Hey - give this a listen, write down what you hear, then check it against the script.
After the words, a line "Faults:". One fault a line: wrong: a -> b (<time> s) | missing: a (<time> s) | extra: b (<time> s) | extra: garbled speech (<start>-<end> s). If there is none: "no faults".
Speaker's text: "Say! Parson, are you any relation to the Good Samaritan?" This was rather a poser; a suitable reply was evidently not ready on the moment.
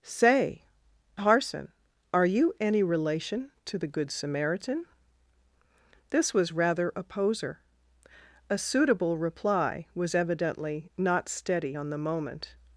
"Say! Parson, are you any relation to the Good Samaritan?" This was rather a poser; a suitable reply was evidently not steady on the moment.
Faults:
wrong: ready -> steady (11.3 s)